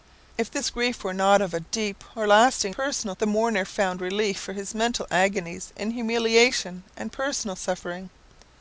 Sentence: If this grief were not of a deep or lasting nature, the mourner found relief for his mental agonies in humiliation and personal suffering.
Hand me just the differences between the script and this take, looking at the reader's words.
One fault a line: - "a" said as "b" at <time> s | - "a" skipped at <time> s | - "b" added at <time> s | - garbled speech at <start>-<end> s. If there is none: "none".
- "nature" said as "personal" at 2.7 s